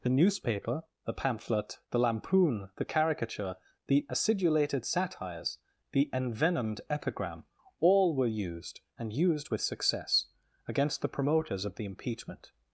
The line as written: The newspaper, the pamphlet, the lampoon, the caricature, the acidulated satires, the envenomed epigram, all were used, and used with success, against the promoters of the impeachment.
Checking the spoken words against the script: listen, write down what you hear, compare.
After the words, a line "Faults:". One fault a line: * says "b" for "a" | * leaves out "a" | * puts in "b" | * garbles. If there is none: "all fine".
The newspaper, the pamphlet, the lampoon, the caricature, the acidulated satires, the envenomed epigram, all were used, and used with success, against the promoters of the impeachment.
Faults:
all fine